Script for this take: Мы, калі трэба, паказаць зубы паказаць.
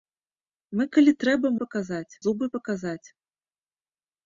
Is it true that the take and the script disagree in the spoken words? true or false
false